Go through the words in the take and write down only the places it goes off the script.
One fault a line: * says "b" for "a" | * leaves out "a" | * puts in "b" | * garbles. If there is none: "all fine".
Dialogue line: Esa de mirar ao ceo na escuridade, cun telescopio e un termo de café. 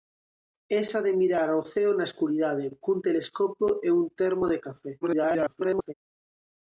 * garbles